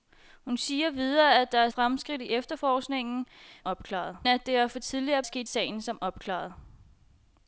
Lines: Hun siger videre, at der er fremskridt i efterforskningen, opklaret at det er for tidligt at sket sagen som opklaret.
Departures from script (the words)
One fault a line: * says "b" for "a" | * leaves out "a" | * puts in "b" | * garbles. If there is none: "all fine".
all fine